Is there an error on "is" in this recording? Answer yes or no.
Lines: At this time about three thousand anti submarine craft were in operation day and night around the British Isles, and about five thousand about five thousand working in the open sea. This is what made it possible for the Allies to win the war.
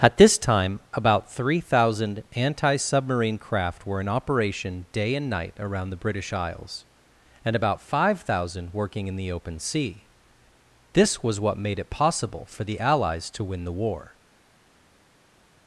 yes